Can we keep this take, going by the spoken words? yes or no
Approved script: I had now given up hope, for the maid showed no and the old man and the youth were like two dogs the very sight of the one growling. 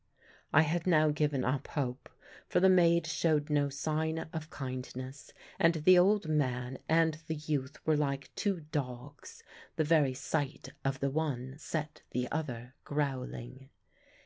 no